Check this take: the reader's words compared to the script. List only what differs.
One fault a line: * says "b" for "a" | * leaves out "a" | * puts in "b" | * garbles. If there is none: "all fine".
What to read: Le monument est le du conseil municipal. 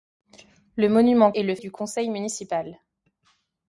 all fine